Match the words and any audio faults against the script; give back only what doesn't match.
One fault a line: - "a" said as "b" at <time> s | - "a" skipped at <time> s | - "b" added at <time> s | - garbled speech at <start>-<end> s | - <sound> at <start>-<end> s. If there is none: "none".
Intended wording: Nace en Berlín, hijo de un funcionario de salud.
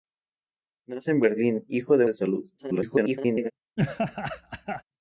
- "un funcionario" skipped at 2.0 s
- garbled speech at 2.6-3.5 s
- laugh at 3.8-4.8 s